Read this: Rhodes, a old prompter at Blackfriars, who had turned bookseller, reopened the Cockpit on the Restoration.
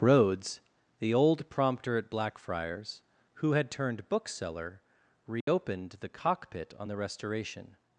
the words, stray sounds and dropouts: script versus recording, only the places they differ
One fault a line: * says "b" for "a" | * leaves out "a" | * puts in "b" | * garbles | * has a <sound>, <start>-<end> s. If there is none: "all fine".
* says "the" for "a"
* has a dropout, 5.4-5.5 s